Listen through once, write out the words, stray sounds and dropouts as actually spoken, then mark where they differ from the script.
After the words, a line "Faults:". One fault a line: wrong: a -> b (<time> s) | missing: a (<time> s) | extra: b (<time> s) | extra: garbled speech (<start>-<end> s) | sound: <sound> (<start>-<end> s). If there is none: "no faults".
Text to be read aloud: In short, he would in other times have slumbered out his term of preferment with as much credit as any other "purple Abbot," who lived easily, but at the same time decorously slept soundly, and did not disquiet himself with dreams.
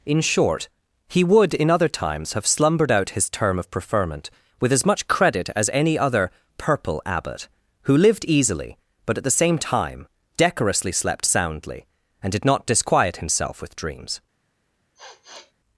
In short, he would in other times have slumbered out his term of preferment with as much credit as any other "purple Abbot," who lived easily, but at the same time decorously slept soundly, and did not disquiet himself with dreams.
Faults:
sound: sniff (15.0-15.5 s)